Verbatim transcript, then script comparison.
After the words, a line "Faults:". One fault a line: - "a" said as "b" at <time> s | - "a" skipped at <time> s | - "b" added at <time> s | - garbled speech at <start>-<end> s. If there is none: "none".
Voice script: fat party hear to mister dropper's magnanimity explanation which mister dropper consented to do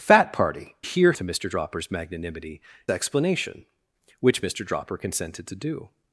fat party hear to mister dropper's magnanimity explanation which mister dropper consented to do
Faults:
none